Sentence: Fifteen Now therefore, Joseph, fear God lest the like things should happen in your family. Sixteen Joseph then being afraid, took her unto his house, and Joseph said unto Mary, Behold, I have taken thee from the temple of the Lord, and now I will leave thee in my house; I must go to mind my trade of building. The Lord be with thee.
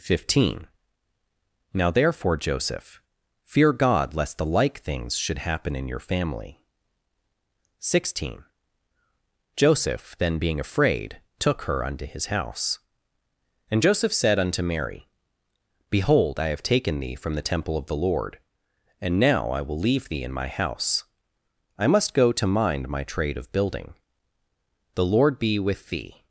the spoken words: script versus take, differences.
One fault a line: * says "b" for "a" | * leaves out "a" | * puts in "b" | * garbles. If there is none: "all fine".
all fine